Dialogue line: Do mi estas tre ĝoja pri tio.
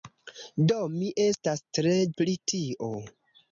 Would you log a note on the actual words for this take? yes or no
yes